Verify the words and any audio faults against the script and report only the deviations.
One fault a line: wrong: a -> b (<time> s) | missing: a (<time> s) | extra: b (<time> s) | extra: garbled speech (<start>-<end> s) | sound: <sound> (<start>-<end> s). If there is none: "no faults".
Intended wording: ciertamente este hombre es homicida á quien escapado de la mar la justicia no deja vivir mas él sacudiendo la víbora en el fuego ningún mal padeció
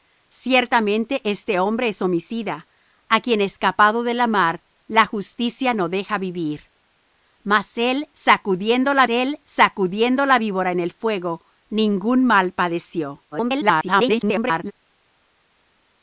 extra: él sacudiendo la (9.1 s)
extra: garbled speech (13.3-14.7 s)